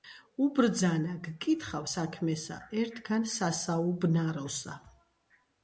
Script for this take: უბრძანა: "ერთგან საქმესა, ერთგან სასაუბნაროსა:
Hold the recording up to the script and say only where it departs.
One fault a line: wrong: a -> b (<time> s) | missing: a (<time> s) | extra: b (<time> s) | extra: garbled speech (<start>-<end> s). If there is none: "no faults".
wrong: ერთგან -> გკითხავ (1.3 s)